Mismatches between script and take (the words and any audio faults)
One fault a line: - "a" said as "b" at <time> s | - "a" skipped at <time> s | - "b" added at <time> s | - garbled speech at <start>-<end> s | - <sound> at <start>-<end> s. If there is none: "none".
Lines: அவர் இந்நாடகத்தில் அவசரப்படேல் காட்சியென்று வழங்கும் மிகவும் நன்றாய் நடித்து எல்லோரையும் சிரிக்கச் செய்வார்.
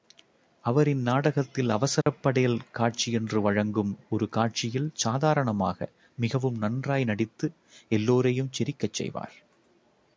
- dropout at 2.0-2.1 s
- "ஒரு காட்சியில் சாதாரணமாக" added at 4.1 s